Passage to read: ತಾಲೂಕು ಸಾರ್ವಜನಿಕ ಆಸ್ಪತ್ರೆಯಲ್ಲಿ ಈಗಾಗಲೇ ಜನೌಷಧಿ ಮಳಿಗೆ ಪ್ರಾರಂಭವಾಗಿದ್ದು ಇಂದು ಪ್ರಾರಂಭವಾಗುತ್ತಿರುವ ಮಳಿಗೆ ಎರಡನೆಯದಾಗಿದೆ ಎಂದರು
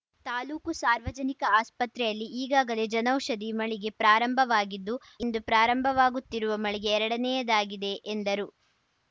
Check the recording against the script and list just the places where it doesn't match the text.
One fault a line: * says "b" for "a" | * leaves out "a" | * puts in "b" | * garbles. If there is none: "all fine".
all fine